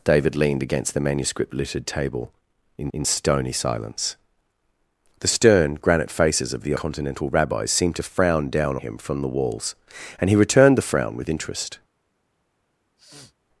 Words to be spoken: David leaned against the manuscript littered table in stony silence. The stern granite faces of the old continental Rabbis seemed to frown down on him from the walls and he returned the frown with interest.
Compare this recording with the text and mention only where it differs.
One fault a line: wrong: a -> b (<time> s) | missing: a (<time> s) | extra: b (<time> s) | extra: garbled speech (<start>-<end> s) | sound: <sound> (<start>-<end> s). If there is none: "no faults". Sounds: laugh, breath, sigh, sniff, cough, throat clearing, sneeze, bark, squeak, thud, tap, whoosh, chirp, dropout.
extra: in (2.9 s)
missing: old (6.8 s)
missing: on (8.8 s)
sound: sniff (13.0-13.3 s)